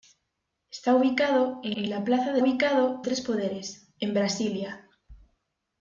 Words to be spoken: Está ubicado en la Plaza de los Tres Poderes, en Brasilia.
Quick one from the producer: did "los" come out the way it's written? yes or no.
no